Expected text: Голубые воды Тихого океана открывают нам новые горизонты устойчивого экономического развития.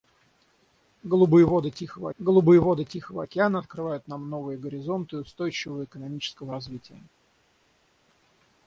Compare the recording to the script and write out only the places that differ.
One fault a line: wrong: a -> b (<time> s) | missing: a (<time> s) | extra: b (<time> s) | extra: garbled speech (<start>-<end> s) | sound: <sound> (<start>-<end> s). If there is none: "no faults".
extra: голубые воды Тихого (2.2 s)